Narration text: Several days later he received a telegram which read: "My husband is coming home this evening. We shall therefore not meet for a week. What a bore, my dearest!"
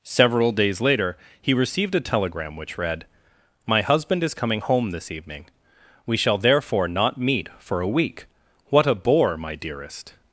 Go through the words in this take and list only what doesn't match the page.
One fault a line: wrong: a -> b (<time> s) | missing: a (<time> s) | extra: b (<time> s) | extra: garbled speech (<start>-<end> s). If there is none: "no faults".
no faults